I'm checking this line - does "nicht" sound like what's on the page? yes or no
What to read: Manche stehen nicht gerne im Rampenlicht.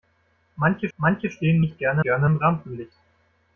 yes